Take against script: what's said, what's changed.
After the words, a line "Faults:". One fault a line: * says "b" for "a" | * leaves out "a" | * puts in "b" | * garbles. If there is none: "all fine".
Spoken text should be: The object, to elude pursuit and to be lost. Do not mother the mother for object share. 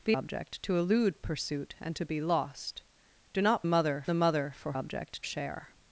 The object, to elude pursuit and to be lost. Do not mother the mother for object share.
Faults:
all fine